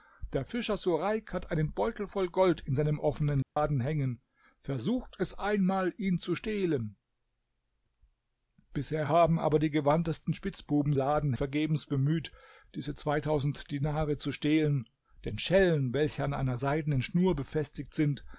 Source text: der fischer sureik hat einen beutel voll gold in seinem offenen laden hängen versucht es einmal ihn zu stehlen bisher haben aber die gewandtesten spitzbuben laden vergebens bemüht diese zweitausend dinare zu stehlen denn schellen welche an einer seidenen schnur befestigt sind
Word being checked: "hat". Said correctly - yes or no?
yes